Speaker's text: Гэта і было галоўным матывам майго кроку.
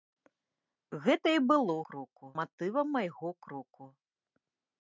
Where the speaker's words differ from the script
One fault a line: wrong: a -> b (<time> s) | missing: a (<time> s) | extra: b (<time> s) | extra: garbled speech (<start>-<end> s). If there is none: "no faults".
wrong: галоўным -> кроку (1.9 s)